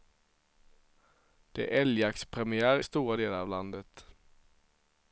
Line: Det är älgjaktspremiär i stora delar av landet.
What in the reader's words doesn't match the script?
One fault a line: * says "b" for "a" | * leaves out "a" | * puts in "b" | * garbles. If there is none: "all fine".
* leaves out "i"